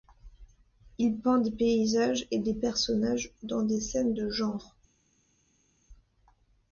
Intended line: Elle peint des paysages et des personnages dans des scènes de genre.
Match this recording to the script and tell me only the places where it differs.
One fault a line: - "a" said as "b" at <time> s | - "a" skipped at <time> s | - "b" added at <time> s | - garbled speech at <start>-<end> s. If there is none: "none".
- "Elle" said as "Il" at 1.0 s